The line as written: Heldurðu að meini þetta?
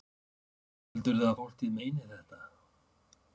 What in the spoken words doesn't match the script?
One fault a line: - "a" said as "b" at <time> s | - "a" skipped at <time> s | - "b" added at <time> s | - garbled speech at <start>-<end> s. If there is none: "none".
- "fólkið" added at 1.4 s